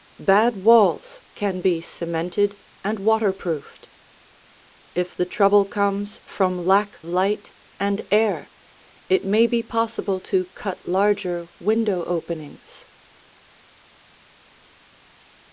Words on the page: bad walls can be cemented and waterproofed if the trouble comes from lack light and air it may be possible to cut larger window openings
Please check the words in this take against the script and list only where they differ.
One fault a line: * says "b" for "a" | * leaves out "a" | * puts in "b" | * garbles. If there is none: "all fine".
all fine